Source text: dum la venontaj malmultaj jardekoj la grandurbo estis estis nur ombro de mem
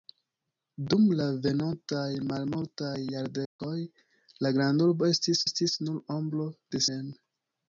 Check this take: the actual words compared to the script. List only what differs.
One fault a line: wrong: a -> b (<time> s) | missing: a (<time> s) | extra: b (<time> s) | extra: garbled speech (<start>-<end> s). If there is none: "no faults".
no faults